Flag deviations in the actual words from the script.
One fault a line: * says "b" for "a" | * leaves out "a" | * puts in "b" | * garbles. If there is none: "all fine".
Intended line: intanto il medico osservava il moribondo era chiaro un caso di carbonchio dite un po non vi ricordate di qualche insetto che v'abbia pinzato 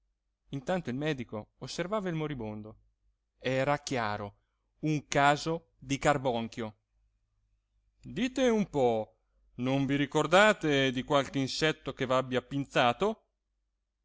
all fine